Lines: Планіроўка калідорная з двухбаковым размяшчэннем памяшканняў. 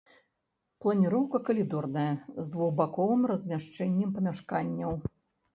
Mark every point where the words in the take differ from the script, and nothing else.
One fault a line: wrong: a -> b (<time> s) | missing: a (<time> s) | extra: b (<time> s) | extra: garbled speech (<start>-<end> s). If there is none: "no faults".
no faults